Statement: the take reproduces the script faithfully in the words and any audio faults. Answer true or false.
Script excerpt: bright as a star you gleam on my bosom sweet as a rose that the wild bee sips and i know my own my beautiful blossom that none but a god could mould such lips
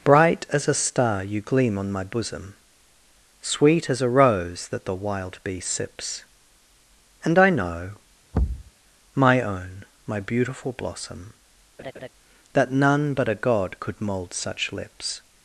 false